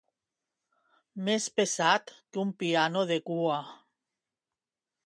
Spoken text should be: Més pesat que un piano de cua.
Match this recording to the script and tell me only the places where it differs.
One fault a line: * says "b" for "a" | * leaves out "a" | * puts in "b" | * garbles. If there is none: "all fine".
all fine